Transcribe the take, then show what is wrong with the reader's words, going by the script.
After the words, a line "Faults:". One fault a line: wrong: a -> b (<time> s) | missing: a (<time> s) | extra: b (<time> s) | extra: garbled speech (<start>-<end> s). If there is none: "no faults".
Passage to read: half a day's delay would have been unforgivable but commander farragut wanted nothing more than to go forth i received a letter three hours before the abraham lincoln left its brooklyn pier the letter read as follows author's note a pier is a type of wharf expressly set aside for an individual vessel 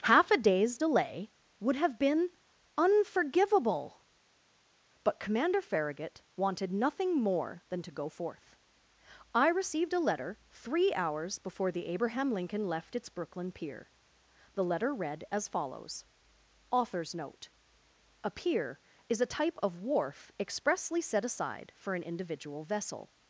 half a day's delay would have been unforgivable but commander farragut wanted nothing more than to go forth i received a letter three hours before the abraham lincoln left its brooklyn pier the letter read as follows author's note a pier is a type of wharf expressly set aside for an individual vessel
Faults:
no faults